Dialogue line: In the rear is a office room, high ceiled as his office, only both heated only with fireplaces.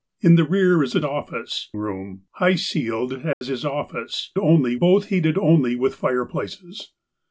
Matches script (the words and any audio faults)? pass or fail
fail